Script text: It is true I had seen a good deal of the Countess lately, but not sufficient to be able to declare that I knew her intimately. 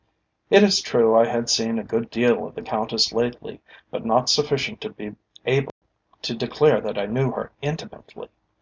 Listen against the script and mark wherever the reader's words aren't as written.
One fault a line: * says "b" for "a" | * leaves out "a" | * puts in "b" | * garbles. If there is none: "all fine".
all fine